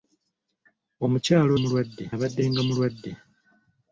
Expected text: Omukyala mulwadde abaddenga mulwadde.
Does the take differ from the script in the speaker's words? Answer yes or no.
no